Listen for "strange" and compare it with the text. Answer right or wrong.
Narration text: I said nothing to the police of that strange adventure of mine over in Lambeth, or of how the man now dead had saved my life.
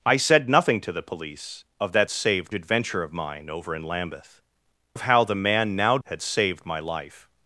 wrong